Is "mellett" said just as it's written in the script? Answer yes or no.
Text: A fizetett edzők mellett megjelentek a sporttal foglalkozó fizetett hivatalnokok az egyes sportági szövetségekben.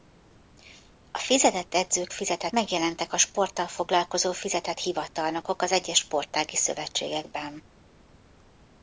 no